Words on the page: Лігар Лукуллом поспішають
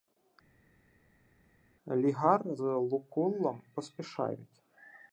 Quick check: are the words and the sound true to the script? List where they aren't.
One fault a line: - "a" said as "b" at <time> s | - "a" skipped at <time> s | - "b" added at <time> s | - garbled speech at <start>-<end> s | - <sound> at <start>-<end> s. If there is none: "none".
none